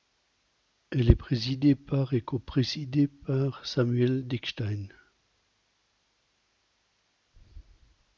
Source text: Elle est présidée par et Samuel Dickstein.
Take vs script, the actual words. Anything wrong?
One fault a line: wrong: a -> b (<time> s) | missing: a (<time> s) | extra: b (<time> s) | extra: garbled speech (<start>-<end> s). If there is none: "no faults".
extra: coprésidée par (2.2 s)